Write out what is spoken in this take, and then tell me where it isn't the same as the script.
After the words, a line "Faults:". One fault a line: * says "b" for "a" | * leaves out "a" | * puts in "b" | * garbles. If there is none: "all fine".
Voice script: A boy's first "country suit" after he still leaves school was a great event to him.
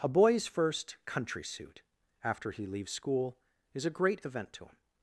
A boy's first "country suit" after he leaves school is a great event to him.
Faults:
* leaves out "still"
* says "is" for "was"